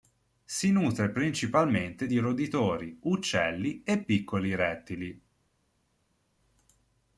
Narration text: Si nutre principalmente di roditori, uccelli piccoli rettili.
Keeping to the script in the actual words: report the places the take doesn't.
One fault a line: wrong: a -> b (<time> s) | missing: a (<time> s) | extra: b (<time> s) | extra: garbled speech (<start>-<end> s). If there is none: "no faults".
extra: e (3.8 s)